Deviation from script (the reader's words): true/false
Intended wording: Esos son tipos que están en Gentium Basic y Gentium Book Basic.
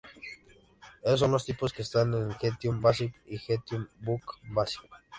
true